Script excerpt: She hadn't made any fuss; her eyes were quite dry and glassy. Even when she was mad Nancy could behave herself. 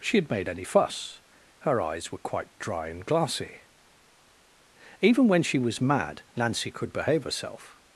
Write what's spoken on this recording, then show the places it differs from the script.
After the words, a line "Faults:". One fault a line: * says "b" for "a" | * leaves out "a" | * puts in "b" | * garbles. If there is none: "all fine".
She had made any fuss; her eyes were quite dry and glassy. Even when she was mad Nancy could behave herself.
Faults:
* says "had" for "hadn't"